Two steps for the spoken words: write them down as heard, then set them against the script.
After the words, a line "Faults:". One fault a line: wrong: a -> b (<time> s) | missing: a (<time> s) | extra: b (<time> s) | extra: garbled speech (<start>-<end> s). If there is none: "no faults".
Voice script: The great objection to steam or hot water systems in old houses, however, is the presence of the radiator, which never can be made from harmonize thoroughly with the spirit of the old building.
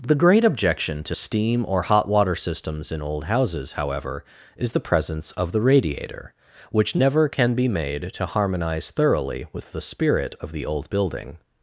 The great objection to steam or hot water systems in old houses, however, is the presence of the radiator, which never can be made to harmonize thoroughly with the spirit of the old building.
Faults:
wrong: from -> to (8.1 s)